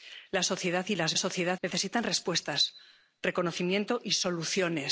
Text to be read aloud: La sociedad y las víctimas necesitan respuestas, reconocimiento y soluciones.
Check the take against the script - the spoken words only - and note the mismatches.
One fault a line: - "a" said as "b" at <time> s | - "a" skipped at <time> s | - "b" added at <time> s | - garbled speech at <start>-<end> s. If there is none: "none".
- "víctimas" said as "sociedad" at 1.2 s